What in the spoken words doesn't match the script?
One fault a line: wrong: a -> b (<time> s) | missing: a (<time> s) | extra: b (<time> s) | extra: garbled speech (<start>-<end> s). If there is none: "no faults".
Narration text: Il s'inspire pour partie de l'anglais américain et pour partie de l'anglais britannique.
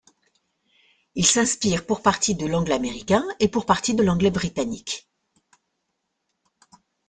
no faults